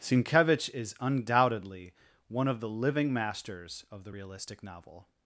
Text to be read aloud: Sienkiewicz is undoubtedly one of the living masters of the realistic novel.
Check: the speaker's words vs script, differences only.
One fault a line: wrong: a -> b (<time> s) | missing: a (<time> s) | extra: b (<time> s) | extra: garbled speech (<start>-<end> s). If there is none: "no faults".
no faults